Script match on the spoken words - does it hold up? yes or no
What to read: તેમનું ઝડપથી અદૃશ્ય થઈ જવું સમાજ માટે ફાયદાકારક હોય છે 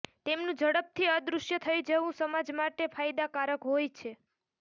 yes